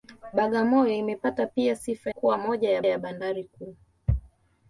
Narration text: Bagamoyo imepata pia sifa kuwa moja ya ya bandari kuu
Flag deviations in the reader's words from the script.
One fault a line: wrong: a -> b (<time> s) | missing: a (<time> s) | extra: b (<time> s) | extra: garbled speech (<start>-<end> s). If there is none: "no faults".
no faults